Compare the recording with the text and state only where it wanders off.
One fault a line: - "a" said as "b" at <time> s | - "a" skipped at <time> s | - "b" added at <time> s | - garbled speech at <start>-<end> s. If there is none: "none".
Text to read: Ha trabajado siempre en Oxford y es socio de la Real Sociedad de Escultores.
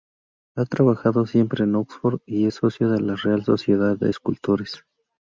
none